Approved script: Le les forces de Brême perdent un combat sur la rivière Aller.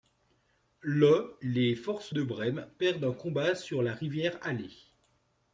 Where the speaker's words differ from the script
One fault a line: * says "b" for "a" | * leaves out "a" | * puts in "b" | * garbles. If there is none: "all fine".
all fine